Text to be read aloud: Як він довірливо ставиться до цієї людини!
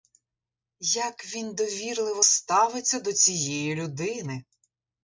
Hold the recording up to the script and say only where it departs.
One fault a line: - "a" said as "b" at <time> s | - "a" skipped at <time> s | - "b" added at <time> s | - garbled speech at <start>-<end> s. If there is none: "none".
none